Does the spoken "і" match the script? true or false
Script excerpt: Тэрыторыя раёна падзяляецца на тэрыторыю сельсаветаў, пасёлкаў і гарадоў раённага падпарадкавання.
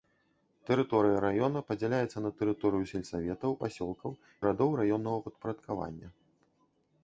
false